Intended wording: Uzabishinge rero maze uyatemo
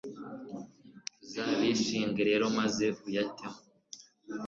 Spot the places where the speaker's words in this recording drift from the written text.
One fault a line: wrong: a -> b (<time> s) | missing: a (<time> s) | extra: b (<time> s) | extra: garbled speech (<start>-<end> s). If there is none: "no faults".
no faults